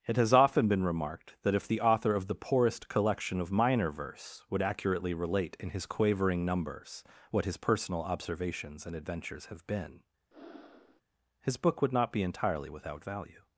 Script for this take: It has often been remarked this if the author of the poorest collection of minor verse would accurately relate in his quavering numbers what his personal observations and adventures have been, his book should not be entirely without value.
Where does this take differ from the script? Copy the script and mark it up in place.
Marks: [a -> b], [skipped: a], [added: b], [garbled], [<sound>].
It has often been remarked [this -> that] if the author of the poorest collection of minor verse would accurately relate in his quavering numbers what his personal observations and adventures have been, [breath] his book [should -> would] not be entirely without value.